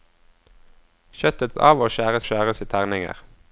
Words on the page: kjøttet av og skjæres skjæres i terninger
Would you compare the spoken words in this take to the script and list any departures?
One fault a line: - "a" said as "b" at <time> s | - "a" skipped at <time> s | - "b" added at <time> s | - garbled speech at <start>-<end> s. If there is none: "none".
none